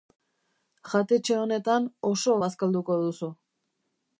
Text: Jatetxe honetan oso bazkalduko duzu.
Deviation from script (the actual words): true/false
false